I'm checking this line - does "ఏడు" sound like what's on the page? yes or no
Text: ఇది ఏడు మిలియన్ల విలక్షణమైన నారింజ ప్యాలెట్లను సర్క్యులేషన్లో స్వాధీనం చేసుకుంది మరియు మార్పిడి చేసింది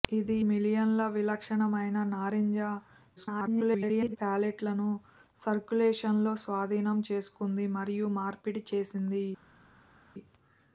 no